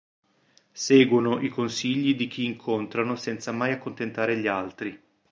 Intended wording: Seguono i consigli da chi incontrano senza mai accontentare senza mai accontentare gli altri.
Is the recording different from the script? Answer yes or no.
yes